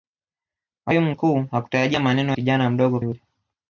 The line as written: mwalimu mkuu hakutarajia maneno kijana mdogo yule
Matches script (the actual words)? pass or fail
pass